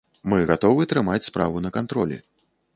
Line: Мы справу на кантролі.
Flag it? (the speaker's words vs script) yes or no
yes